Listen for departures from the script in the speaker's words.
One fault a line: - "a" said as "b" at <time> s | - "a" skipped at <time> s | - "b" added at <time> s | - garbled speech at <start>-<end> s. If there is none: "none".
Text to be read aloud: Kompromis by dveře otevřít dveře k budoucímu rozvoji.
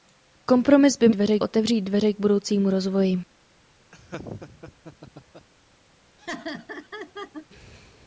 none